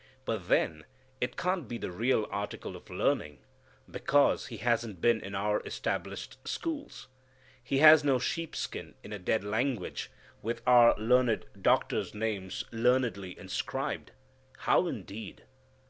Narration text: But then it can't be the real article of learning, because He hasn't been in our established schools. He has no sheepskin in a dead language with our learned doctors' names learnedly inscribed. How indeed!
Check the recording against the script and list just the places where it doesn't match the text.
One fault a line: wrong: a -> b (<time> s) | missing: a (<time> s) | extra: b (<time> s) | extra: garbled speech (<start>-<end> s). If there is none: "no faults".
no faults